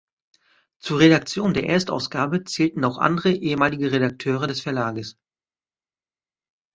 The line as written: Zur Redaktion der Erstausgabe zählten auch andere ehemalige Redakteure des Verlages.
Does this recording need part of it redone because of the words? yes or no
no